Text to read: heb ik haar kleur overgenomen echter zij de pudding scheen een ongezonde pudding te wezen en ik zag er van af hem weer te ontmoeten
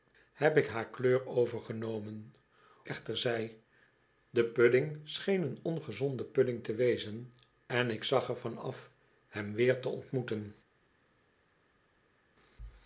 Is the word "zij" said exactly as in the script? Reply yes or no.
yes